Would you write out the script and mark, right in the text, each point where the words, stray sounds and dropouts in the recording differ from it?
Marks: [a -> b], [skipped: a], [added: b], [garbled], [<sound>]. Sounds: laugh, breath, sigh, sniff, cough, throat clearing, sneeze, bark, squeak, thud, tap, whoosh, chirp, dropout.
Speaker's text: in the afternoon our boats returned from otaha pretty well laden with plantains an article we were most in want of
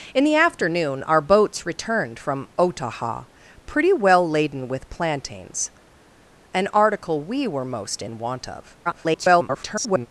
in the afternoon our boats returned from otaha pretty well laden with plantains an article we were most in want of [garbled]